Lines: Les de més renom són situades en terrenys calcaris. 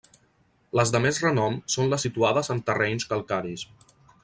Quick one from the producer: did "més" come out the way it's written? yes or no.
yes